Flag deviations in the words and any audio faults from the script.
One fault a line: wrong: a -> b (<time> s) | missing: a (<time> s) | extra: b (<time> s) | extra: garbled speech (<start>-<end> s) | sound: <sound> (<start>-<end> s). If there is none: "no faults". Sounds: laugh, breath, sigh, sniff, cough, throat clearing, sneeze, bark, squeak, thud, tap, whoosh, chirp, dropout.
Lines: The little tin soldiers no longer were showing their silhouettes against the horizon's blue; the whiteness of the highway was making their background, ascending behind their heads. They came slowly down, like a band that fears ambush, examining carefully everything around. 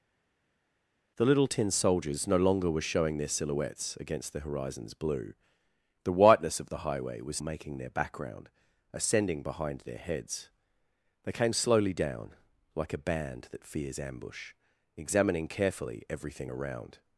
no faults